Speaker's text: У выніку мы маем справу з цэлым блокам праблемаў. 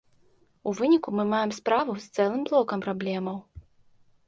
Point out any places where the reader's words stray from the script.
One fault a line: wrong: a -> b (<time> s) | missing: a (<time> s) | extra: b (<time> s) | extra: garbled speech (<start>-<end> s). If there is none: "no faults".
no faults